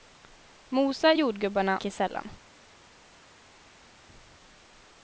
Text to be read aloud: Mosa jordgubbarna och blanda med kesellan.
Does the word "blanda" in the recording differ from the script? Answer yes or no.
yes